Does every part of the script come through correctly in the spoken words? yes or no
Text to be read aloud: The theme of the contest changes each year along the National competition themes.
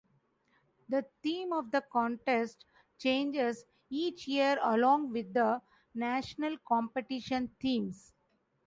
no